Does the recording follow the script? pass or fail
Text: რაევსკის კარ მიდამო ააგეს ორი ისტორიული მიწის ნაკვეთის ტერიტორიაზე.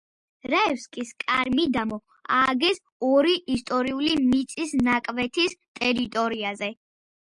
pass